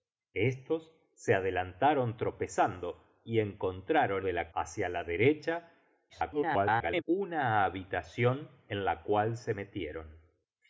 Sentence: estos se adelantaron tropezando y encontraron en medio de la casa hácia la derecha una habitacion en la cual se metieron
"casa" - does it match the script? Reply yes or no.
no